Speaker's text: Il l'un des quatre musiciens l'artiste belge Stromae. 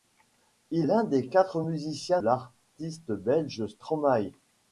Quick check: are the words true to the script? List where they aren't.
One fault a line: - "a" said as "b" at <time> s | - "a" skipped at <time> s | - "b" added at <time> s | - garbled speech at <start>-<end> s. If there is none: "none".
none